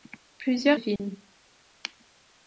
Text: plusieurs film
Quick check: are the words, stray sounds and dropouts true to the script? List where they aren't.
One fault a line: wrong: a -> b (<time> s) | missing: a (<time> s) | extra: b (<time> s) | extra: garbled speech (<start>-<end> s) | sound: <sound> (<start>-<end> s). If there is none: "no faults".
sound: dropout (1.0-1.0 s)